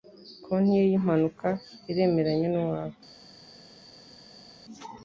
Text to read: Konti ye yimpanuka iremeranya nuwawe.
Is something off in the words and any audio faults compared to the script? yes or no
no